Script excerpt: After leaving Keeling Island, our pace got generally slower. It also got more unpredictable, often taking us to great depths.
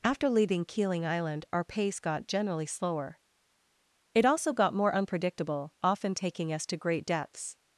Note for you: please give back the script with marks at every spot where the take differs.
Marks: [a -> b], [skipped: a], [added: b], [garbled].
After leaving Keeling Island, our pace got generally slower. It also got more unpredictable, often taking us to great depths.